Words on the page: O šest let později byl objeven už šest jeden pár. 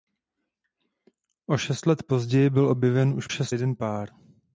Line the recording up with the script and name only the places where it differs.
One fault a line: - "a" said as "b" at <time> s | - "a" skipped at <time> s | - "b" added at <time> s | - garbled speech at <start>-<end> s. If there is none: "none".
none